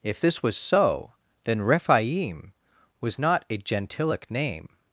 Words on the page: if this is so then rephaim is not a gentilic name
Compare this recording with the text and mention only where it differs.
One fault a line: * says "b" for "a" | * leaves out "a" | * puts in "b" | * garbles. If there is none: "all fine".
* says "was" for "is"
* says "was" for "is"